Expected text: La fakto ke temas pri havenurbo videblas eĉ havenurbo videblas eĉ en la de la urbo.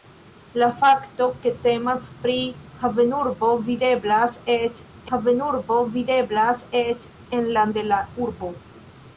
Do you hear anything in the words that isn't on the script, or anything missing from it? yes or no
no